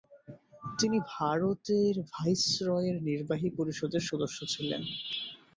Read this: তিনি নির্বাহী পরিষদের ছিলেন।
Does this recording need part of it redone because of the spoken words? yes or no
yes